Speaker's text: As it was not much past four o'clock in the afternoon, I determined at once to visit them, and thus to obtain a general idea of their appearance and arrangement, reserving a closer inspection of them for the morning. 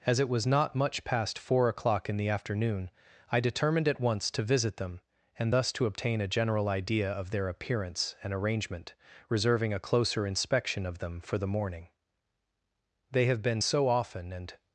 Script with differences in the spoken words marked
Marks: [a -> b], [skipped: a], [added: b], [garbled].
As it was not much past four o'clock in the afternoon, I determined at once to visit them, and thus to obtain a general idea of their appearance and arrangement, reserving a closer inspection of them for the morning. [added: They have been so often and]